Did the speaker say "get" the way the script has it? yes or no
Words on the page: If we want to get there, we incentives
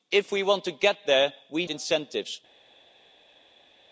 yes